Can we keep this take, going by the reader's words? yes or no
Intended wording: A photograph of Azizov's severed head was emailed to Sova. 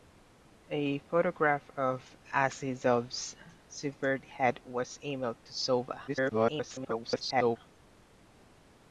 no